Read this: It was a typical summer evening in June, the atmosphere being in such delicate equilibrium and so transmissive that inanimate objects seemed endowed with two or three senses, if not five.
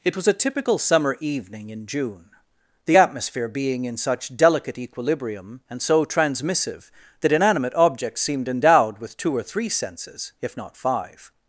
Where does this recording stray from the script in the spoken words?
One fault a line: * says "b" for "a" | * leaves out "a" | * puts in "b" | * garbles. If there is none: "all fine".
all fine